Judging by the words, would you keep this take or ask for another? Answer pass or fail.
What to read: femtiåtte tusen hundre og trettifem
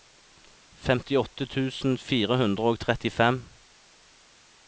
fail